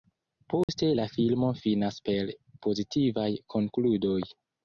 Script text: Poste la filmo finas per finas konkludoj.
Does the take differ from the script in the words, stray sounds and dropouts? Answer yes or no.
yes